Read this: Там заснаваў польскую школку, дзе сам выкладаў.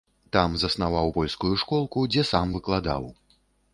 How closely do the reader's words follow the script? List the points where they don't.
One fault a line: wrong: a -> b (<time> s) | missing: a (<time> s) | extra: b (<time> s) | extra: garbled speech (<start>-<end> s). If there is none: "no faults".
no faults